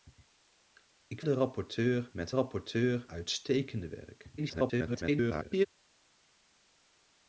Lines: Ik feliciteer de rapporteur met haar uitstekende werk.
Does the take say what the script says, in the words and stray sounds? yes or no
no